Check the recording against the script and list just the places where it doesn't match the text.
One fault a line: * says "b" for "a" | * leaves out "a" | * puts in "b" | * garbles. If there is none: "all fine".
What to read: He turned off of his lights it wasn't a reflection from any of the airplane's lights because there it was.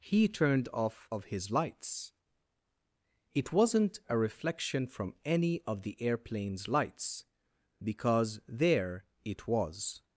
all fine